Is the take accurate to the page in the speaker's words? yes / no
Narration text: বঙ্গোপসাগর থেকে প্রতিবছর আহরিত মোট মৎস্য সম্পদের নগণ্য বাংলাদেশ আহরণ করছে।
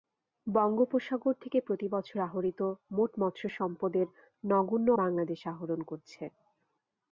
yes